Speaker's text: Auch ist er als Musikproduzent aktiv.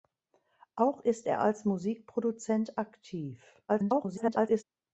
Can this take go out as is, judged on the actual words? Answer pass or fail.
fail